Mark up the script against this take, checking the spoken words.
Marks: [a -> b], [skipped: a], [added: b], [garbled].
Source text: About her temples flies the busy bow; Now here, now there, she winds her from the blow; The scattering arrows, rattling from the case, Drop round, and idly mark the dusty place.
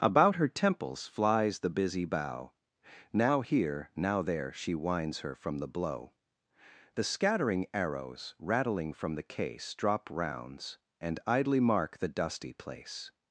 About her temples flies the busy bow; Now here, now there, she winds her from the blow; The scattering arrows, rattling from the case, Drop [round, -> rounds] and idly mark the dusty place.